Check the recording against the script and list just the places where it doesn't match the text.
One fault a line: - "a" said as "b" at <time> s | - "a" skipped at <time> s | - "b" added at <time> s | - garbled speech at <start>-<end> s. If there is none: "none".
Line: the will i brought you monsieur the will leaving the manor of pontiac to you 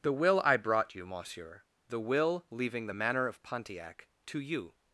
none